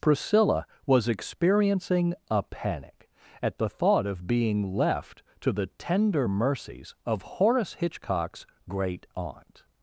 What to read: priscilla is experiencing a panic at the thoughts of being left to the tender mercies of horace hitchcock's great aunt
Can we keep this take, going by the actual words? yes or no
no